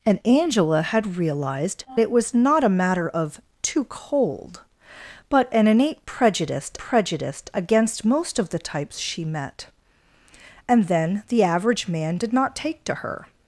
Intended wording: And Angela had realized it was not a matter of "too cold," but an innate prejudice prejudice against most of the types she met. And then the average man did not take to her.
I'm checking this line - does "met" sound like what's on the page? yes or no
yes